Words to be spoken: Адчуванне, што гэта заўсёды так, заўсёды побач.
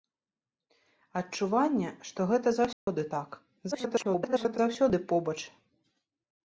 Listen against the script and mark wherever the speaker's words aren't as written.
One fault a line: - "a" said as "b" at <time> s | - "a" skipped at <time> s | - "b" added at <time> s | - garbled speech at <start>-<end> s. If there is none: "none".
- garbled speech at 3.7-4.6 s